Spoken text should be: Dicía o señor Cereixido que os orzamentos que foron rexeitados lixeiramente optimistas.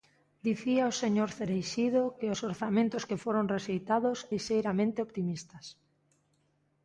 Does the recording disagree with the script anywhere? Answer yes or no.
no